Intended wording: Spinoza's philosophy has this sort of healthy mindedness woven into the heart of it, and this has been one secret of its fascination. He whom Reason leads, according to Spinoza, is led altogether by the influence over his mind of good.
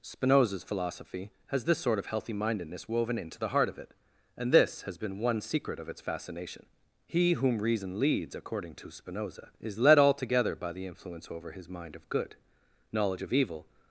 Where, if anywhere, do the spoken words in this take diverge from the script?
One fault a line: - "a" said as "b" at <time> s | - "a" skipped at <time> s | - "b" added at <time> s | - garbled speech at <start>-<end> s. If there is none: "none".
- "Knowledge of evil" added at 12.9 s